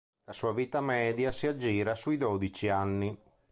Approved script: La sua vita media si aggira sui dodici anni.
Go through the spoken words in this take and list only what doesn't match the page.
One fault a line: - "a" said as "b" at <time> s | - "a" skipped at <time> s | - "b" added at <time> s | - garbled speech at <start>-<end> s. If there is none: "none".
none